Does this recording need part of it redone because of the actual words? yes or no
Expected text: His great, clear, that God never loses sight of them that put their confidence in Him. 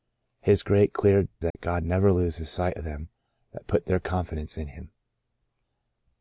no